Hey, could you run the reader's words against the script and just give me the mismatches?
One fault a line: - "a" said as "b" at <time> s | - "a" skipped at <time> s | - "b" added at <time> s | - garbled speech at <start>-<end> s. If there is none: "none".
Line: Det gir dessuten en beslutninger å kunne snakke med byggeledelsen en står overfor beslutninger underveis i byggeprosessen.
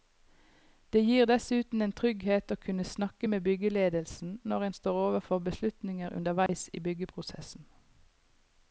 - "beslutninger" said as "trygghet" at 2.0 s
- "når" added at 4.5 s